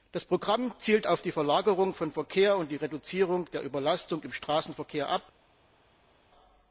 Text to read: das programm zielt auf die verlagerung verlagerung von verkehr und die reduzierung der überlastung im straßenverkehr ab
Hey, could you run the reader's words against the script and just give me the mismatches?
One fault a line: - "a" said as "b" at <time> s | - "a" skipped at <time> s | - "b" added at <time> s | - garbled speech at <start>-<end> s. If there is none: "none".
- "verlagerung" skipped at 1.9 s